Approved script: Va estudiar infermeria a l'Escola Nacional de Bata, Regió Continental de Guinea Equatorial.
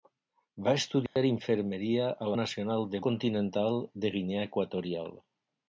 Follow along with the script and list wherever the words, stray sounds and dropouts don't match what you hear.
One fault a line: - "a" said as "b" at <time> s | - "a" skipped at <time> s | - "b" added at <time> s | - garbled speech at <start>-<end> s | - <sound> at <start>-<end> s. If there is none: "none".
- dropout at 1.1-1.2 s
- "l'Escola" skipped at 2.3 s
- "Bata Regió" skipped at 3.0 s